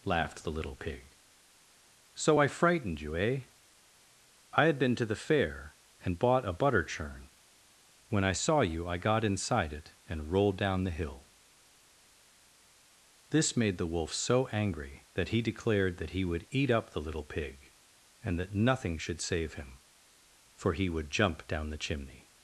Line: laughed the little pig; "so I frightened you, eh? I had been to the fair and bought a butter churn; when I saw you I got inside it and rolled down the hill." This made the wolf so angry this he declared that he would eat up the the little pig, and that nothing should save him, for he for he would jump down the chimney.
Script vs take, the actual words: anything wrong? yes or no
yes